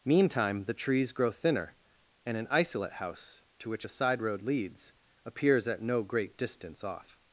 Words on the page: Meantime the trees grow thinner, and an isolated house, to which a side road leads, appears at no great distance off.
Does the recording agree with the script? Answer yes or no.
no